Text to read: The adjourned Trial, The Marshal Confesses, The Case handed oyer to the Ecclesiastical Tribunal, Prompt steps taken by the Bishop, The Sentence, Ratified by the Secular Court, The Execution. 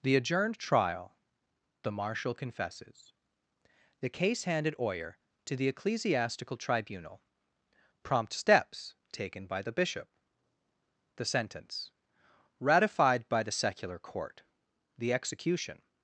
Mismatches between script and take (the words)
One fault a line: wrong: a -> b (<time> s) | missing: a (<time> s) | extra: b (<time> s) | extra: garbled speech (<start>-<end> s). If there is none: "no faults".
no faults